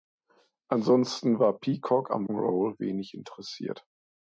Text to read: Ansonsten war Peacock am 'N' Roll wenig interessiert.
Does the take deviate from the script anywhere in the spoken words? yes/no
no